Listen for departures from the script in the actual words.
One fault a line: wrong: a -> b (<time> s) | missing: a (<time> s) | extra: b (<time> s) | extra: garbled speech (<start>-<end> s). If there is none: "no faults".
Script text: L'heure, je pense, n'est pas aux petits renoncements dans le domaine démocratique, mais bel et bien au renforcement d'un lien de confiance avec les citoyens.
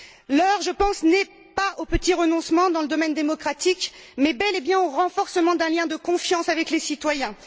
no faults